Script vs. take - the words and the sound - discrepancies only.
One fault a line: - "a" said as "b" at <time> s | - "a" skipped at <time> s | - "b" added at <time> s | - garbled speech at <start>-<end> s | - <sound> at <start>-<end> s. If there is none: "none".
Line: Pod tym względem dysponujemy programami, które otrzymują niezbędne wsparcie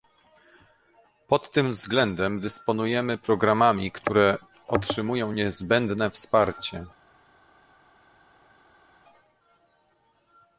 none